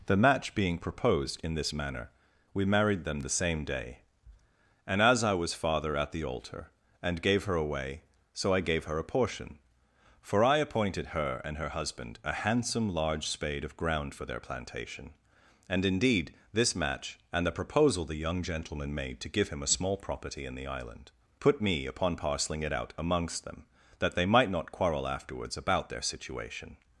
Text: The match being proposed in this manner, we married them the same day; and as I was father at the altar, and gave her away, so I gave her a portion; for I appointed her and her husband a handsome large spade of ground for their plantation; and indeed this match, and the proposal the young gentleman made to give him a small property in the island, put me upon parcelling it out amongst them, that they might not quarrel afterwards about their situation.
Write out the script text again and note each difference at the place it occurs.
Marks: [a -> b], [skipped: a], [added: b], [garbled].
The match being proposed in this manner, we married them the same day; and as I was father at the altar, and gave her away, so I gave her a portion; for I appointed her and her husband a handsome large spade of ground for their plantation; and indeed this match, and the proposal the young gentleman made to give him a small property in the island, put me upon parcelling it out amongst them, that they might not quarrel afterwards about their situation.